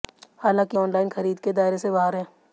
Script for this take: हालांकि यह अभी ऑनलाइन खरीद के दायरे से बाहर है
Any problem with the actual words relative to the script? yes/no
yes